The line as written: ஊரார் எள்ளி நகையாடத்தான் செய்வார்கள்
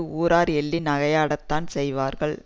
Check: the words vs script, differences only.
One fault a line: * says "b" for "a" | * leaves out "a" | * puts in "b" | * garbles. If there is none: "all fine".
all fine